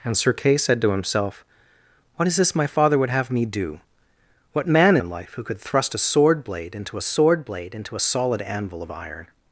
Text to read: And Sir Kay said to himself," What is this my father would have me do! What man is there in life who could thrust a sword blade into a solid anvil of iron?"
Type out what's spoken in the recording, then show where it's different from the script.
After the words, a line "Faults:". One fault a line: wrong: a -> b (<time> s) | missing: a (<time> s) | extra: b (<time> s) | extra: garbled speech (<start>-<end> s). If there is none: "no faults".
And Sir Kay said to himself," What is this my father would have me do! What man in life who could thrust a sword blade into sword blade into a solid anvil of iron?"
Faults:
missing: is there (5.0 s)
extra: sword blade into (7.0 s)